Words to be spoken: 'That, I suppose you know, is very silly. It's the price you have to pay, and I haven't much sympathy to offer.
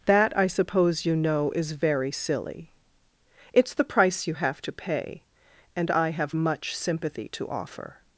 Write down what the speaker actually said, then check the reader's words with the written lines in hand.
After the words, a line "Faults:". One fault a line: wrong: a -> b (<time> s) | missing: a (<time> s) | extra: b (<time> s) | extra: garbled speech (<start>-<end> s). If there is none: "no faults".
'That, I suppose you know, is very silly. It's the price you have to pay, and I have much sympathy to offer.
Faults:
wrong: haven't -> have (6.1 s)